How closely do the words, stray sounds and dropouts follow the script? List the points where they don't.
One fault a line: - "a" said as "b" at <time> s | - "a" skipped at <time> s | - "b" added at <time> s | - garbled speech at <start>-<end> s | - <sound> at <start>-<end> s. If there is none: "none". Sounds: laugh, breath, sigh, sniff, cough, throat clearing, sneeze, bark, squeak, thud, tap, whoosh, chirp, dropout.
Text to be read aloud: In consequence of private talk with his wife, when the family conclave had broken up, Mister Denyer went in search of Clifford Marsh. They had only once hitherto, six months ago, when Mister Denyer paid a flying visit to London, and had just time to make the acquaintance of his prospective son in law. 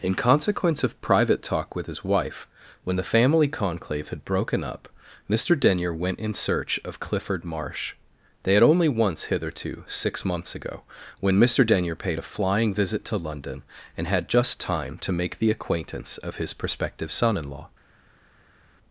none